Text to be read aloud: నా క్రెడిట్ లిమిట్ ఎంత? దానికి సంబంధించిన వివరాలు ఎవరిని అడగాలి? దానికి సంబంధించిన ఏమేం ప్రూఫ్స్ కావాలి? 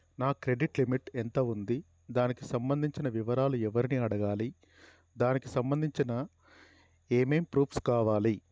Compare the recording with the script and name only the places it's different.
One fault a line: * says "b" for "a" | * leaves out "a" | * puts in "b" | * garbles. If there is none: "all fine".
* puts in "ఉంది"